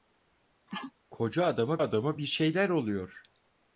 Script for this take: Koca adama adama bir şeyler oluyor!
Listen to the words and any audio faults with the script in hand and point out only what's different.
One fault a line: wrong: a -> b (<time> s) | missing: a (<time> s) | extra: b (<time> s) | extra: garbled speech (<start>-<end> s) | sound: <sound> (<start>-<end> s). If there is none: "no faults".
sound: sneeze (0.7-0.9 s)